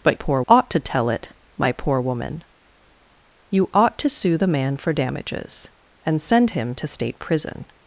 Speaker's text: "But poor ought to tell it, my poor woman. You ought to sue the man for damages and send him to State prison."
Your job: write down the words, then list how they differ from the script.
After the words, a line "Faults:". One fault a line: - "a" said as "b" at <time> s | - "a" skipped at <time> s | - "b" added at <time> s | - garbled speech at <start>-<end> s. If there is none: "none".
"But poor ought to tell it, my poor woman. You ought to sue the man for damages and send him to State prison."
Faults:
none